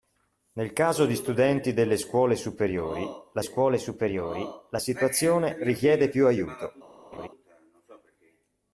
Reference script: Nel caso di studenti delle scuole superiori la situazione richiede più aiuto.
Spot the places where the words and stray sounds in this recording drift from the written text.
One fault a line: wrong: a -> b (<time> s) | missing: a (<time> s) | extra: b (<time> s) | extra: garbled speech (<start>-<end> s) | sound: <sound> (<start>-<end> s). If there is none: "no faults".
extra: scuole superiori la (3.4 s)
sound: laugh (7.1-7.3 s)